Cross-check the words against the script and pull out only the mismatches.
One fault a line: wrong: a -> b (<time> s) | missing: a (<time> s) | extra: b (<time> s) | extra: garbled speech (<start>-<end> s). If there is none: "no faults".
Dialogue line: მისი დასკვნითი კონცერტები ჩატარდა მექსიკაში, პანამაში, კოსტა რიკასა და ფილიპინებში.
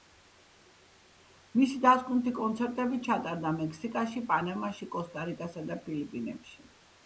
no faults